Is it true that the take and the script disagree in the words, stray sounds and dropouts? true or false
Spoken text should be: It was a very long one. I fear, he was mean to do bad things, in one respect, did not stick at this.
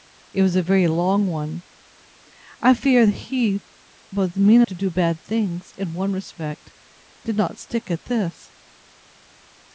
false